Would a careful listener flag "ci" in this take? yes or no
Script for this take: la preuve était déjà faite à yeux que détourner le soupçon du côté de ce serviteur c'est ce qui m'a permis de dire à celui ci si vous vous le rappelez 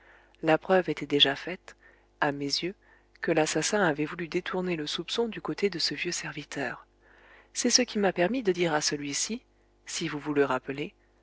no